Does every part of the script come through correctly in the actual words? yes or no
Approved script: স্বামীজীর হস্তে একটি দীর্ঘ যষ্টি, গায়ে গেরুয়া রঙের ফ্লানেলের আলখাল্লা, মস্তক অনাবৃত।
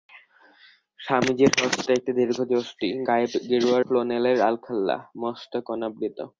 no